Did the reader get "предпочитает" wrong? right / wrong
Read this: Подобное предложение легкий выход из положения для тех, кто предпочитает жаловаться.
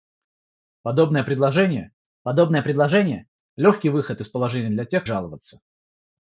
wrong